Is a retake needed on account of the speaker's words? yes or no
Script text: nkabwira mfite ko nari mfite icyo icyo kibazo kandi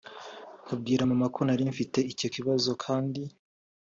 yes